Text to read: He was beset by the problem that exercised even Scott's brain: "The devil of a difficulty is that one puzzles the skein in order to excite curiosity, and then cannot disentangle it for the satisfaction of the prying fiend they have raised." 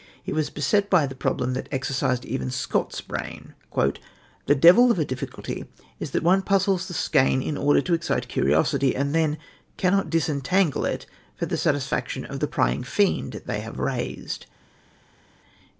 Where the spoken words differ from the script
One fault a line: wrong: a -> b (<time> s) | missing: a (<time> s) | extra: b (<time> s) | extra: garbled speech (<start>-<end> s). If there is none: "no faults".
no faults